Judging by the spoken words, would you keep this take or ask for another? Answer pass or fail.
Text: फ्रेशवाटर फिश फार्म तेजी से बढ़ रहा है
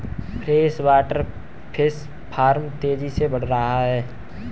pass